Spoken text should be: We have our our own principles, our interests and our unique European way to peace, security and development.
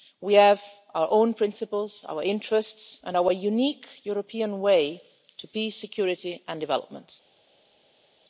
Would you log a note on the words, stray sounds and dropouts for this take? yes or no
yes